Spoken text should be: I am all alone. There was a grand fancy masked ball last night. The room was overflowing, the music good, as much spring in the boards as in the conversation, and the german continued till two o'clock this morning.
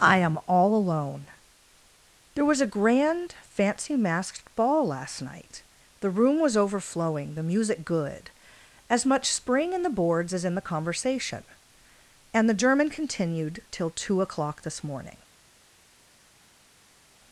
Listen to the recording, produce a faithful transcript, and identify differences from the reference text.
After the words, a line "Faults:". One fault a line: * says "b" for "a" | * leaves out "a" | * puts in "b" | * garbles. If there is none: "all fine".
I am all alone. There was a grand fancy masked ball last night. The room was overflowing, the music good, as much spring in the boards as in the conversation, and the german continued till two o'clock this morning.
Faults:
all fine